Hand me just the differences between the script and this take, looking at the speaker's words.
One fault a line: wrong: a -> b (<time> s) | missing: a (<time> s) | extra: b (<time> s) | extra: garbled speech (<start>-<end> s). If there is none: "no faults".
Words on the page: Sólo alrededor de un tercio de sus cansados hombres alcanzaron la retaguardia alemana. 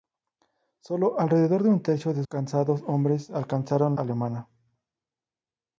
missing: sus (2.2 s)
missing: la retaguardia (4.0 s)